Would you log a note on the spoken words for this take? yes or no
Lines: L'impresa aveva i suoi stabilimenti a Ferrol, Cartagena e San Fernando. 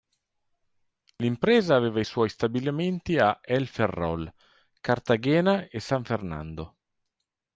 yes